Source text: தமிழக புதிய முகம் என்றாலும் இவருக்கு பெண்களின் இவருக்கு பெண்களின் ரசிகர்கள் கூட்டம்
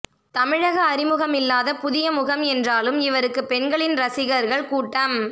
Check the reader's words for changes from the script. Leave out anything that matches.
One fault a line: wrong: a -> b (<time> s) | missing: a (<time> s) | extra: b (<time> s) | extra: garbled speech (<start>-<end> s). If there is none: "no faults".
extra: அறிமுகமில்லாத (0.8 s)
missing: இவருக்கு பெண்களின் (4.0 s)